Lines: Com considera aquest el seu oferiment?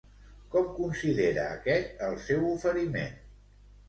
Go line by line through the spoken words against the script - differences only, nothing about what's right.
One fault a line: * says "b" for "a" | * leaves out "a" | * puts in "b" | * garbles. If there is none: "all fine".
all fine